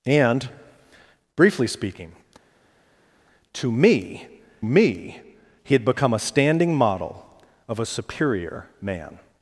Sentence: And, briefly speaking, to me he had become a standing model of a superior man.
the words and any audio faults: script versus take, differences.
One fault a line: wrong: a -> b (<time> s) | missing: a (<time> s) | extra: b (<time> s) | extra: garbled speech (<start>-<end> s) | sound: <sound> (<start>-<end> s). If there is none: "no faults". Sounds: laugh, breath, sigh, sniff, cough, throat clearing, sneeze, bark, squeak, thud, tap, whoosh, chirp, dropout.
extra: me (4.6 s)